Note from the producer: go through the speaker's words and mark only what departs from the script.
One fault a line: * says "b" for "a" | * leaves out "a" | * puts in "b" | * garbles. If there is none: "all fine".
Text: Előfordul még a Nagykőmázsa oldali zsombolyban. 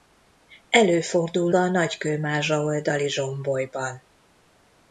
* leaves out "még"